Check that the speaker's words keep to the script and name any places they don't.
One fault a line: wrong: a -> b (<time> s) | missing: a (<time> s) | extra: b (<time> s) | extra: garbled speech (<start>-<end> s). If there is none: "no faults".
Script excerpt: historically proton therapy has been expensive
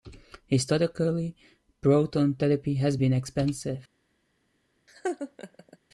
no faults